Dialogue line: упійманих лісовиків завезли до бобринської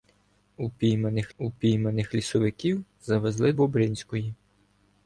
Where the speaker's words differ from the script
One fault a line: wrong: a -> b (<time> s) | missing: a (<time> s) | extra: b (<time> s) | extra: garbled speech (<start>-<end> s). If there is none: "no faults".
extra: упійманих (1.4 s)
missing: до (3.5 s)